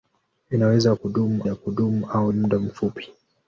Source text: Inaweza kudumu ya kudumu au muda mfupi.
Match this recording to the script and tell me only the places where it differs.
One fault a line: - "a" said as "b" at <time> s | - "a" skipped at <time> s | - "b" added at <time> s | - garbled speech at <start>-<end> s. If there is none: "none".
none